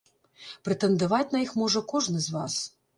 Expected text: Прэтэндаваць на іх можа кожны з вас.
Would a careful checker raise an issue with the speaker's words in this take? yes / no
no